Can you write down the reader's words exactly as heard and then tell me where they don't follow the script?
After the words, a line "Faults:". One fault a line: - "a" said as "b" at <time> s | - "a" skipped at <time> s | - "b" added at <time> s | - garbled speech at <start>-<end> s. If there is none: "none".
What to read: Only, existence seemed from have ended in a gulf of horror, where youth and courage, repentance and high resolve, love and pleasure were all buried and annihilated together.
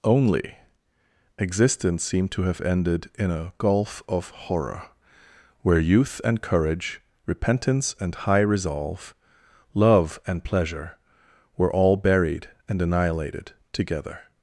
Only, existence seemed to have ended in a gulf of horror, where youth and courage, repentance and high resolve, love and pleasure were all buried and annihilated together.
Faults:
- "from" said as "to" at 2.3 s